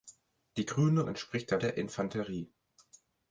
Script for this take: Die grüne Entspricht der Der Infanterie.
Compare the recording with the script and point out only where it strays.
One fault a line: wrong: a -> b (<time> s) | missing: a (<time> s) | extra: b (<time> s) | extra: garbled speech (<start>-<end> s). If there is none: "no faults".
no faults